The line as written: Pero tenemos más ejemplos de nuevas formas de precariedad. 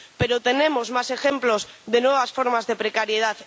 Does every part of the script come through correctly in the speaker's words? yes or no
yes